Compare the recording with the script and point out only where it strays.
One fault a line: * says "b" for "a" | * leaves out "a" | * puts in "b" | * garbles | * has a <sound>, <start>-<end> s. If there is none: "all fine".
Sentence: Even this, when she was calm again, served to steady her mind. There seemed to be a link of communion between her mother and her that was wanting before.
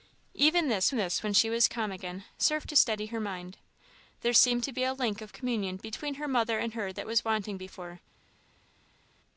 * puts in "this"